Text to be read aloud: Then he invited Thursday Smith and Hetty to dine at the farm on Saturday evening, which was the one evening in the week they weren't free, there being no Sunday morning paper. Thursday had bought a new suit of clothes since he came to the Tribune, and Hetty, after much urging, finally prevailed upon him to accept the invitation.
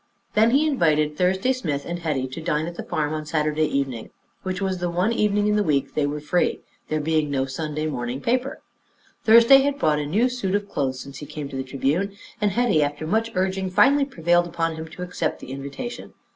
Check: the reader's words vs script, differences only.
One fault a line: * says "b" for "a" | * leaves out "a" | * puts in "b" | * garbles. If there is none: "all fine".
* says "were" for "weren't"